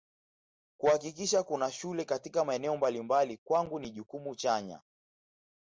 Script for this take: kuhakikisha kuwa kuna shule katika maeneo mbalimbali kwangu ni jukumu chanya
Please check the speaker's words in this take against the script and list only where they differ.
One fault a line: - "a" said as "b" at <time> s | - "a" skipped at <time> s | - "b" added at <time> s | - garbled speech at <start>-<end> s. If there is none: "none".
- "kuwa" skipped at 1.4 s